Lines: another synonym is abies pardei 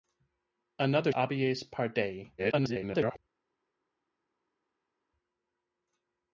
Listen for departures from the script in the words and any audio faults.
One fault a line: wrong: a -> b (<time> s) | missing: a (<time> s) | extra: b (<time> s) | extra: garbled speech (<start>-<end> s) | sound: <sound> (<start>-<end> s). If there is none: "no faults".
missing: synonym is (1.1 s)
extra: garbled speech (2.4-3.2 s)